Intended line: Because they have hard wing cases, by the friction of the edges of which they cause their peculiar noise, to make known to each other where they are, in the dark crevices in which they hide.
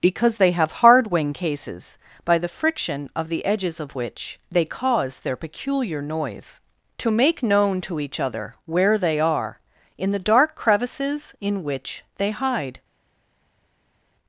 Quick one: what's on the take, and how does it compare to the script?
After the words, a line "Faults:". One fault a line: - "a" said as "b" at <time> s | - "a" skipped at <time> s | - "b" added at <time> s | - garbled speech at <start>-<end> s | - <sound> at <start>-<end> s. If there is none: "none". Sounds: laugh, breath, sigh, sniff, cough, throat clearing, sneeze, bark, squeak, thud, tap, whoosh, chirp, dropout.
Because they have hard wing cases, by the friction of the edges of which they cause their peculiar noise, to make known to each other where they are, in the dark crevices in which they hide.
Faults:
none